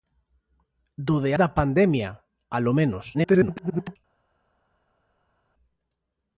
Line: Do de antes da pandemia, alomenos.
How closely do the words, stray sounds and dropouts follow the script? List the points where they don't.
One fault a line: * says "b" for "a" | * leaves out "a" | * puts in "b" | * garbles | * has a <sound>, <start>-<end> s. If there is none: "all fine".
* leaves out "antes"
* garbles